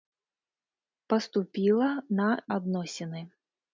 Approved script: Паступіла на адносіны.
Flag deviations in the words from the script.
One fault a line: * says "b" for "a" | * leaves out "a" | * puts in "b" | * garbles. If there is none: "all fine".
all fine